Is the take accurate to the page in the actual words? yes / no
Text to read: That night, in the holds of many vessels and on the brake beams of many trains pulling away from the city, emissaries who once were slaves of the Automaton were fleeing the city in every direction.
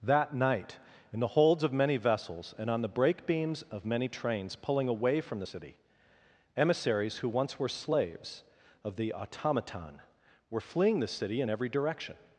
yes